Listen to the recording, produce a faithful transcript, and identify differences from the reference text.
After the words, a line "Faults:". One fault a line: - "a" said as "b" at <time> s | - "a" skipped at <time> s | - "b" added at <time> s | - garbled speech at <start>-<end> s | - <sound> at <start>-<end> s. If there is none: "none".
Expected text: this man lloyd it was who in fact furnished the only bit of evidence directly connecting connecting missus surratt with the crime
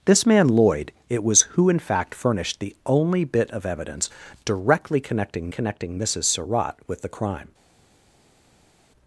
this man lloyd it was who in fact furnished the only bit of evidence directly connecting connecting missus surratt with the crime
Faults:
none